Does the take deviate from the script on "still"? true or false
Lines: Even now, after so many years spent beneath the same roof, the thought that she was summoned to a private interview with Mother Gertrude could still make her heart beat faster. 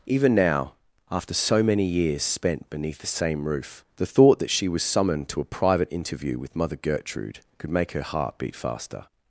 true